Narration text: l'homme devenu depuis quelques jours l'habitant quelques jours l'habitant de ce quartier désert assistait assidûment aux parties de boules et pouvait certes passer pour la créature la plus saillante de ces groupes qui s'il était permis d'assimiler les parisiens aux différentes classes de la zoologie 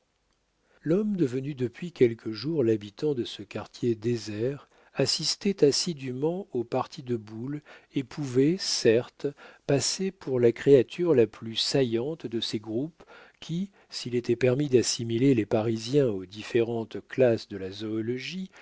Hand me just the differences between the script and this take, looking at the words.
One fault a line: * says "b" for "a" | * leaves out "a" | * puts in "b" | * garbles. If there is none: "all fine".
* leaves out "quelques jours l'habitant"